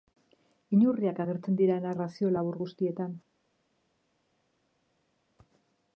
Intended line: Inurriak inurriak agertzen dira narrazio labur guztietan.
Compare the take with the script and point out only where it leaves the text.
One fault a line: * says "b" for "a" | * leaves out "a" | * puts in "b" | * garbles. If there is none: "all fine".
* leaves out "inurriak"